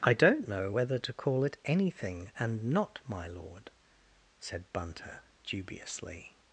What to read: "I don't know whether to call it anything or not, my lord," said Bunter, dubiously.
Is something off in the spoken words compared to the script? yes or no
yes